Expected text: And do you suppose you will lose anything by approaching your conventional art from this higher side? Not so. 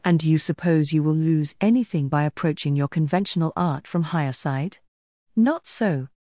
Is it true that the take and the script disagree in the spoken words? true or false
true